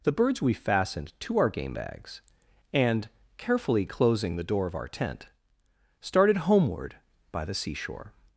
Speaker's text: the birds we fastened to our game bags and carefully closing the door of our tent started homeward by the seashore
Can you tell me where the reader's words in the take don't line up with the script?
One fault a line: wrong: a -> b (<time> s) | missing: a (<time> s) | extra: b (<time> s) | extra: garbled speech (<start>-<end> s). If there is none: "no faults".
no faults